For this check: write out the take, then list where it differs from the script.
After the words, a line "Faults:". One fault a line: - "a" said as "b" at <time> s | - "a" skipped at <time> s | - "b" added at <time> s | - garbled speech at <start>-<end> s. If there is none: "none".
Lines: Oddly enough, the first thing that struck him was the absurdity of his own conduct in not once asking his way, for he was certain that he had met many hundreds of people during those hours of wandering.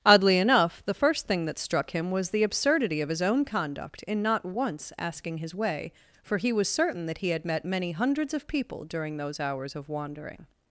Oddly enough, the first thing that struck him was the absurdity of his own conduct in not once asking his way, for he was certain that he had met many hundreds of people during those hours of wandering.
Faults:
none